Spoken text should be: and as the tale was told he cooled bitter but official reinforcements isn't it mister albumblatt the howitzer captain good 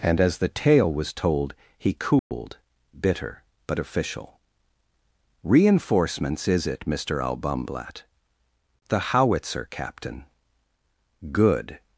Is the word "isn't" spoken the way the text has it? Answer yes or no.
no